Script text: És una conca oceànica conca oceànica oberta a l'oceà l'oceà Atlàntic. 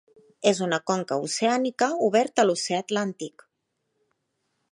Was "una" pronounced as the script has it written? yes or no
yes